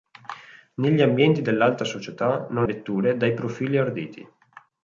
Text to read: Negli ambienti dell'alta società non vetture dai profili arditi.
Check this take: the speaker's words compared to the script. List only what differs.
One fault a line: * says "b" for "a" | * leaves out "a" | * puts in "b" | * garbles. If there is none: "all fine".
all fine